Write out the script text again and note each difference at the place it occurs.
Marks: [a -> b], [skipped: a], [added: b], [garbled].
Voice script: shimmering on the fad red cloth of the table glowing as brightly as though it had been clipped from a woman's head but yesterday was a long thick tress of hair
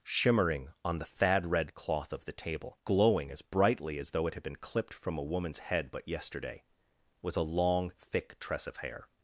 shimmering on the fad red cloth of the table glowing as brightly as though it had been clipped from a woman's head but yesterday was a long thick tress of hair